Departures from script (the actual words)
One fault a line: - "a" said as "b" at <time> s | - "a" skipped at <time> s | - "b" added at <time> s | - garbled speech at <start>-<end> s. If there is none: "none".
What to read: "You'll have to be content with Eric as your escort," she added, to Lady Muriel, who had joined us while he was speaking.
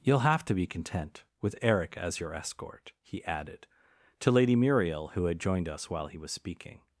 - "she" said as "he" at 3.0 s